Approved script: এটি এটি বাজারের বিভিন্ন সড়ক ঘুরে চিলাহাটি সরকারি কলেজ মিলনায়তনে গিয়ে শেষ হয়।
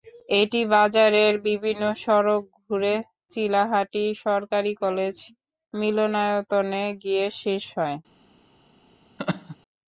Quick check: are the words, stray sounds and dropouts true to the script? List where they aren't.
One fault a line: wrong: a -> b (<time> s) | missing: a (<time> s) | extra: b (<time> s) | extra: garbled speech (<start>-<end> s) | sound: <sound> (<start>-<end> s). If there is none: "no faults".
missing: এটি (0.6 s)
sound: laugh (9.2-9.6 s)